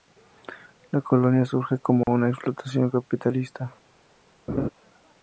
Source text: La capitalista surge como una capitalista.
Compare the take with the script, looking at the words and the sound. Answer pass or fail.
fail